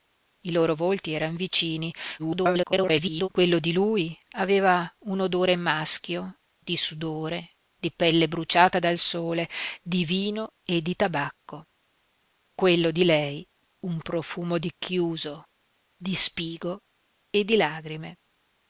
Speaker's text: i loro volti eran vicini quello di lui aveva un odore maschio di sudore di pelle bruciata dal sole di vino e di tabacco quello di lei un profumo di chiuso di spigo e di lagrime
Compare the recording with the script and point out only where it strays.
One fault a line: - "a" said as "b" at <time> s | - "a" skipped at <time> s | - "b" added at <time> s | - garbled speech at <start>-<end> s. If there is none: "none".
- garbled speech at 2.2-3.3 s